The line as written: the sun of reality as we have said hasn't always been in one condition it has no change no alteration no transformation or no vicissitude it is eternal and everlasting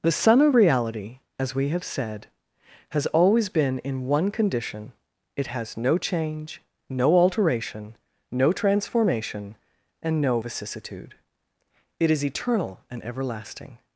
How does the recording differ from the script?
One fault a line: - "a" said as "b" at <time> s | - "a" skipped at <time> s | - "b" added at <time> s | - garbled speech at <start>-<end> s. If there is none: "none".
- "hasn't" said as "has" at 2.9 s
- "or" said as "and" at 10.0 s